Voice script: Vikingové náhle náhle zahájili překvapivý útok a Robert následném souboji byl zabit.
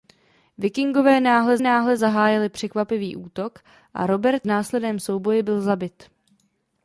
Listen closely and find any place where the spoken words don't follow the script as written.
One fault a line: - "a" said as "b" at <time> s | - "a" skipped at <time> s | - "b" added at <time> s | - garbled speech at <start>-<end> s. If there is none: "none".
none